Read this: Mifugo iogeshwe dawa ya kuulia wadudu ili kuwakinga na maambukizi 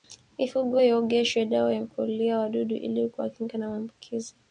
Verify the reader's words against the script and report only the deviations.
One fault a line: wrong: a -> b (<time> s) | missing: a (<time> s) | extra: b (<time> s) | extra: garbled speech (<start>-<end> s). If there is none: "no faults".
no faults